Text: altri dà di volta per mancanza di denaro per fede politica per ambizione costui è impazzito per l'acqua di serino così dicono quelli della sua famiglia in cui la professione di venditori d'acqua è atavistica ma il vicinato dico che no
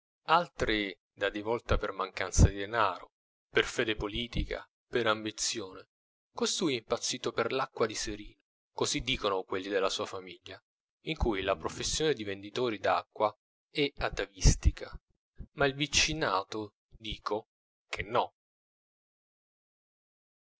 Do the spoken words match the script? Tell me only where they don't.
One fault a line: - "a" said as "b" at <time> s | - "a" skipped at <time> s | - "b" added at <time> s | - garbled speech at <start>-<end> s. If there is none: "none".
none